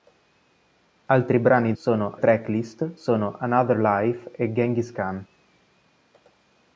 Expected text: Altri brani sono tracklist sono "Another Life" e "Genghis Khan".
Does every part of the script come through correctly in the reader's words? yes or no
yes